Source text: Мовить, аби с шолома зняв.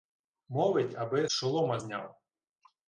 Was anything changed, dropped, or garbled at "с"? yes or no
yes